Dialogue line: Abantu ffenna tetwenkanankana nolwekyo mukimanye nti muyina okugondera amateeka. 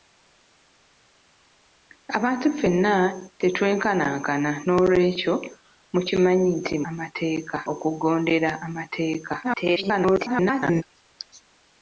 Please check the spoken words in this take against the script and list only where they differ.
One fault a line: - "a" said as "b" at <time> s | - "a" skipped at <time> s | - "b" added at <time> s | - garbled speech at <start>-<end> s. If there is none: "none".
- "muyina" said as "amateeka" at 6.9 s
- garbled speech at 9.4-10.8 s